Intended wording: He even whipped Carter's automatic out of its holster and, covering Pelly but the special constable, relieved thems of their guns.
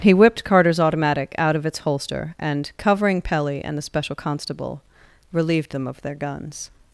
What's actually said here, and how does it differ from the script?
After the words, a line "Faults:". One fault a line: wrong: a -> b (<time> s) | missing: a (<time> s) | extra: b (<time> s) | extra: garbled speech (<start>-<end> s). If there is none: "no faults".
He whipped Carter's automatic out of its holster and, covering Pelly and the special constable, relieved them of their guns.
Faults:
missing: even (0.1 s)
wrong: but -> and (3.6 s)
wrong: thems -> them (5.7 s)